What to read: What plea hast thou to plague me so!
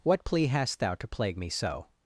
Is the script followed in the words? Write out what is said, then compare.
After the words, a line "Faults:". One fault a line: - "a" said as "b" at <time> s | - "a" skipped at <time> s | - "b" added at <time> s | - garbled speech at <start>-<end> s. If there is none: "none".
What plea hast thou to plague me so!
Faults:
none